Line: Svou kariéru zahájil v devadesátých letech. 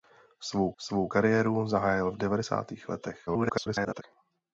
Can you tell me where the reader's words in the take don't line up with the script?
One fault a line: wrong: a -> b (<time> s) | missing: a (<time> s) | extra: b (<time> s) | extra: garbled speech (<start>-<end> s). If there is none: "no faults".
extra: svou (0.8 s)
extra: garbled speech (3.3-4.0 s)